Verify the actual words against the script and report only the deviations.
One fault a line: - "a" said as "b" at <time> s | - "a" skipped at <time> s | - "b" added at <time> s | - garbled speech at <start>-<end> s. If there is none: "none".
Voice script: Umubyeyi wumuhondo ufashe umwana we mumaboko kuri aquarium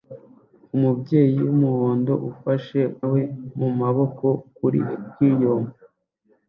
- "umwana" skipped at 2.8 s